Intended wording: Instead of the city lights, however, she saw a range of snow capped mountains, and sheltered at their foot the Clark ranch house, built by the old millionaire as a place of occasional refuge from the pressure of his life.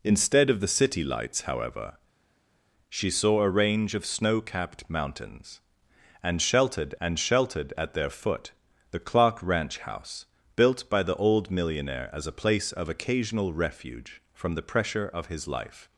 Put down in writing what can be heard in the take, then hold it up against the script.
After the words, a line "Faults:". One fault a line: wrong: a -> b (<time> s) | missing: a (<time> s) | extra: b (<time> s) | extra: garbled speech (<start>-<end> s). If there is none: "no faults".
Instead of the city lights, however, she saw a range of snow capped mountains, and sheltered and sheltered at their foot the Clark ranch house, built by the old millionaire as a place of occasional refuge from the pressure of his life.
Faults:
extra: and sheltered (7.0 s)